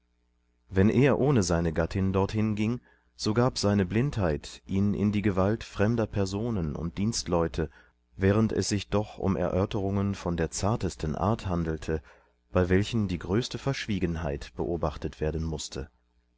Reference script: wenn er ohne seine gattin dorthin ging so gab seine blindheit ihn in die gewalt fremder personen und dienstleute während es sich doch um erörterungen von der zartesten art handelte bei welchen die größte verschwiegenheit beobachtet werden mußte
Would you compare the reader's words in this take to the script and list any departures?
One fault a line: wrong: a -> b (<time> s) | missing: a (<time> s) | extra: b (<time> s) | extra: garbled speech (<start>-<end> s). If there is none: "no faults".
no faults